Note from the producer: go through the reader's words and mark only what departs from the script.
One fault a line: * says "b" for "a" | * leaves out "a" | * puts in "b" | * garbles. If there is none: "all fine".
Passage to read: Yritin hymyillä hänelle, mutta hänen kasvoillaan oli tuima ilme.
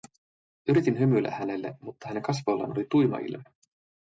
all fine